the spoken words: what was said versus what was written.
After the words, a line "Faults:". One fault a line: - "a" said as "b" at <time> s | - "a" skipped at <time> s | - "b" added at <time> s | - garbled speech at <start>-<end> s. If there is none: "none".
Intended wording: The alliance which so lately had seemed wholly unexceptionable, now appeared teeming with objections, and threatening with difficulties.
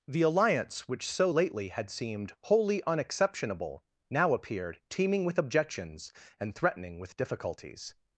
The alliance which so lately had seemed wholly unexceptionable, now appeared teeming with objections, and threatening with difficulties.
Faults:
none